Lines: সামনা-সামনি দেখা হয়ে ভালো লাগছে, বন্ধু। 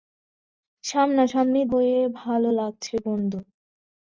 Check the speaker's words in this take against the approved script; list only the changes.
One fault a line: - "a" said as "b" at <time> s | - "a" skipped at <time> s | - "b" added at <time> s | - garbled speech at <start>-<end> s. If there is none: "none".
- "দেখা" skipped at 1.6 s